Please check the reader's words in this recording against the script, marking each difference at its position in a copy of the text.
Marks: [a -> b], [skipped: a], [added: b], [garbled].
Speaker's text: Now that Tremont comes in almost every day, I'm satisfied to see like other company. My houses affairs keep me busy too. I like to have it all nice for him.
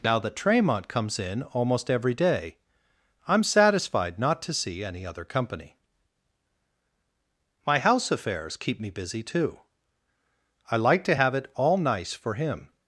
Now that Tremont comes in almost every day, I'm satisfied [added: not] to see [like -> any] other company. My [houses -> house] affairs keep me busy too. I like to have it all nice for him.